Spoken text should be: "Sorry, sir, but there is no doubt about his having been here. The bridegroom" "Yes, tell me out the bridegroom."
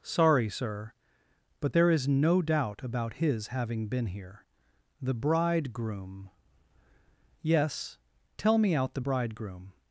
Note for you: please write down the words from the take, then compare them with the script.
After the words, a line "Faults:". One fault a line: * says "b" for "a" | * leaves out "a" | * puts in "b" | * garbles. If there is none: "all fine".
"Sorry, sir, but there is no doubt about his having been here. The bridegroom" "Yes, tell me out the bridegroom."
Faults:
all fine